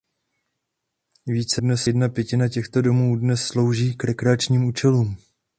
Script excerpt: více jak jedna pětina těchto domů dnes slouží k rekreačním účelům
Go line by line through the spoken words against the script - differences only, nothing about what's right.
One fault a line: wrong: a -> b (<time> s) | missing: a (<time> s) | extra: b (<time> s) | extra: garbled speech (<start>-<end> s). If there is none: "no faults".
wrong: jak -> dnes (1.6 s)